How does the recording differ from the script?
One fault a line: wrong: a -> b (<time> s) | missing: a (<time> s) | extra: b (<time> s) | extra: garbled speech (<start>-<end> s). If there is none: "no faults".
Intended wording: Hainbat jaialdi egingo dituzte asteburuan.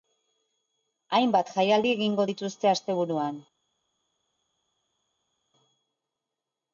no faults